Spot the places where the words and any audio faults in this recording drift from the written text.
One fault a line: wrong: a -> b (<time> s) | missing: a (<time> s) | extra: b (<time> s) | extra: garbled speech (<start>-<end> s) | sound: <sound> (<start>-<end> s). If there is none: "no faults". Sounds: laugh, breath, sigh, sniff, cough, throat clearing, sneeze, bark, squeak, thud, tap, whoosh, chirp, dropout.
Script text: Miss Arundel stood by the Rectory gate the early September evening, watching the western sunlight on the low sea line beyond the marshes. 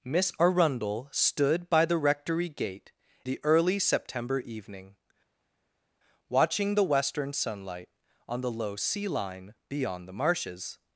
no faults